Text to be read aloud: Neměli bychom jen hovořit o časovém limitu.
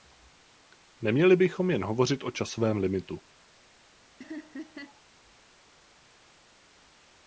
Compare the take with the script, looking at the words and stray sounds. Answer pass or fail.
fail